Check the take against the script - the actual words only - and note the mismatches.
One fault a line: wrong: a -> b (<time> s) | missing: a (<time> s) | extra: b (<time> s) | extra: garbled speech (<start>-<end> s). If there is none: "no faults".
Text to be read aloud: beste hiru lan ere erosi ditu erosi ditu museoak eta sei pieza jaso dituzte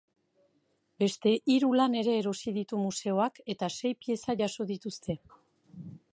missing: erosi ditu (2.8 s)